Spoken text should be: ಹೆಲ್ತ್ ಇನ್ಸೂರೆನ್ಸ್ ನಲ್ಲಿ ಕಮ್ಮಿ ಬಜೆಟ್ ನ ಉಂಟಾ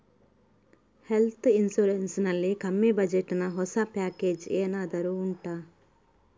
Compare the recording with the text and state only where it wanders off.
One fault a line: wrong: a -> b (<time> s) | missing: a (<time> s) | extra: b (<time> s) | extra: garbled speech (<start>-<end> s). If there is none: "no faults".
extra: ಹೊಸ ಪ್ಯಾಕೇಜ್ ಏನಾದರೂ (3.5 s)